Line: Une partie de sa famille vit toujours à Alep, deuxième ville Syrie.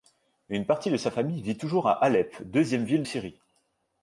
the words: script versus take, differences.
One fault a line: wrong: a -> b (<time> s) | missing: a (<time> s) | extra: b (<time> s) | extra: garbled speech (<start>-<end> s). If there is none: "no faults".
no faults